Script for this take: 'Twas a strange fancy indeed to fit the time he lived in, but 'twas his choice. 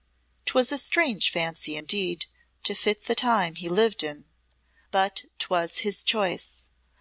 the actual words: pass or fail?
pass